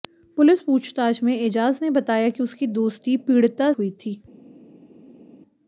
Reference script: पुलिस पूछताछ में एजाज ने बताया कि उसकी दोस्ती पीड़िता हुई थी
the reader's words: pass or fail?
pass